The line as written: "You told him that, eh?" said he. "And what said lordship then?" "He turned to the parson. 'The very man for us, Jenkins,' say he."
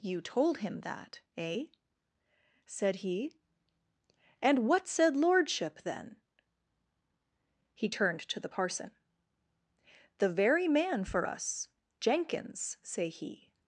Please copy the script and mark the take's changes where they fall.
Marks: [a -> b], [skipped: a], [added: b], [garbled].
"You told him that, eh?" said he. "And what said lordship then?" "He turned to the parson. 'The very man for us, Jenkins,' say he."